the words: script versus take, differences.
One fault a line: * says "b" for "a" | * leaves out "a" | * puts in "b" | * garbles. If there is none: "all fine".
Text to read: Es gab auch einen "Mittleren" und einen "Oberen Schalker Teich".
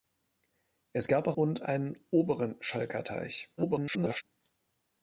* leaves out "einen Mittleren"
* garbles